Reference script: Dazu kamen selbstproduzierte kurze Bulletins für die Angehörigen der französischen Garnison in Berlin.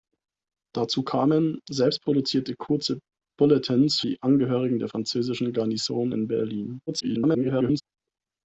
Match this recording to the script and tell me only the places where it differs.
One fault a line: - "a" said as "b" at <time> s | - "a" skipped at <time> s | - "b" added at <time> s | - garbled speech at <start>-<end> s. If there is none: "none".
- "für" skipped at 4.0 s
- garbled speech at 6.9-7.8 s